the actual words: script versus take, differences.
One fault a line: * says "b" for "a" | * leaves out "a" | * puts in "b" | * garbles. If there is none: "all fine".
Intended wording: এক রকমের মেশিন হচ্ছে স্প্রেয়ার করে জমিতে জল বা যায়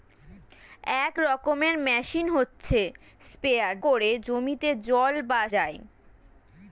all fine